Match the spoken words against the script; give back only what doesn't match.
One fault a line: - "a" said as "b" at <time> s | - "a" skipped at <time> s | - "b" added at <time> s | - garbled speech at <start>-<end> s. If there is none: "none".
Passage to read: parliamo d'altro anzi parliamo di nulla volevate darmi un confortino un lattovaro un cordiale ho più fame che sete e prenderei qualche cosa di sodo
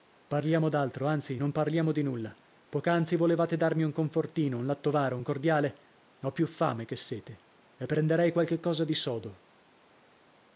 - "non" added at 1.3 s
- "poc'anzi" added at 2.7 s